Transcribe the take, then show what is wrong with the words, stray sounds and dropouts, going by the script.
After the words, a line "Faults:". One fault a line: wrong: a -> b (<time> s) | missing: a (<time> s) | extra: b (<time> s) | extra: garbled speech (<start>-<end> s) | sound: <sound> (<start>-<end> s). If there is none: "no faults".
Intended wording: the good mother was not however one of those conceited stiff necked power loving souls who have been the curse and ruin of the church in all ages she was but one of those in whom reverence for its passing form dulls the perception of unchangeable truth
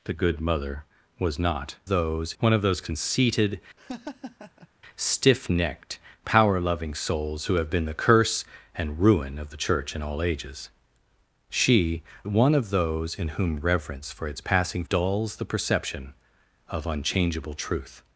the good mother was not those one of those conceited stiff necked power loving souls who have been the curse and ruin of the church in all ages she one of those in whom reverence for its passing dulls the perception of unchangeable truth
Faults:
wrong: however -> those (1.9 s)
sound: laugh (3.8-4.7 s)
missing: was but (12.0 s)
missing: form (14.9 s)